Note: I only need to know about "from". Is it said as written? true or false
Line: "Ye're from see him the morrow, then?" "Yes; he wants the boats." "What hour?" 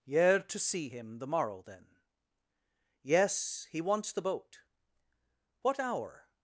false